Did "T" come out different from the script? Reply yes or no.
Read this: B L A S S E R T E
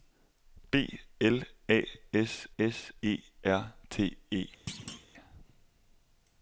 no